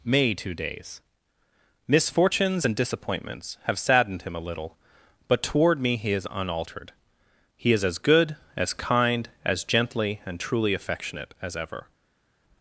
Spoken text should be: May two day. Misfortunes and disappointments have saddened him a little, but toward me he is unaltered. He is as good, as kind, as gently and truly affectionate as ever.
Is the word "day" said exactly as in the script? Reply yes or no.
no